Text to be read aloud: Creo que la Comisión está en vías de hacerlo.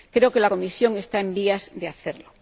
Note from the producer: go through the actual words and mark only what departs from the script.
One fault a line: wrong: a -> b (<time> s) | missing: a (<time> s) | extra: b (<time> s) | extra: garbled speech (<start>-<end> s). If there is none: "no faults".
no faults